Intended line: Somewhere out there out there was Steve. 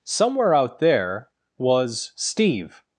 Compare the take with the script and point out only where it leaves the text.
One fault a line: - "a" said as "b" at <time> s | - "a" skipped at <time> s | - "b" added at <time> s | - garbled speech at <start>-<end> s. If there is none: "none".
- "out there" skipped at 1.3 s